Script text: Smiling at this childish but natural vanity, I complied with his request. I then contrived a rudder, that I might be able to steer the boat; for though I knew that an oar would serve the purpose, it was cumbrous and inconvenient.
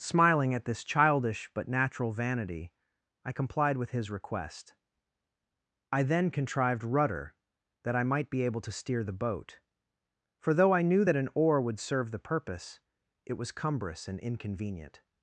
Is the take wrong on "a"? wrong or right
wrong